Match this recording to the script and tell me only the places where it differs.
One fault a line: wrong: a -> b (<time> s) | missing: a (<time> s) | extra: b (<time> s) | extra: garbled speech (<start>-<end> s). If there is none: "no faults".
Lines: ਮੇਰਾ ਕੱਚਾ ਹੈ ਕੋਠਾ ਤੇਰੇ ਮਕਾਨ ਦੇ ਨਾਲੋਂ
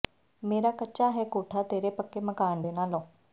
extra: ਪੱਕੇ (1.9 s)